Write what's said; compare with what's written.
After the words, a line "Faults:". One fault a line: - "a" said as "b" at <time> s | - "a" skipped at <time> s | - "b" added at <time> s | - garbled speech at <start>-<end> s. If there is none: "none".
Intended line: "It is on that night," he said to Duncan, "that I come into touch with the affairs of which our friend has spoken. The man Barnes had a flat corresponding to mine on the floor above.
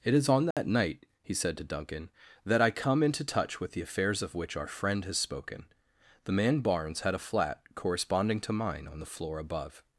"It is on that night," he said to Duncan, "that I come into touch with the affairs of which our friend has spoken. The man Barnes had a flat corresponding to mine on the floor above.
Faults:
none